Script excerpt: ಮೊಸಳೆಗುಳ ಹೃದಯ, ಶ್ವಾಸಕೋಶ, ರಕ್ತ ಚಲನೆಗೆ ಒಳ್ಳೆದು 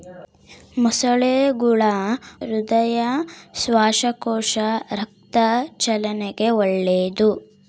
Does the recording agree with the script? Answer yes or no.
yes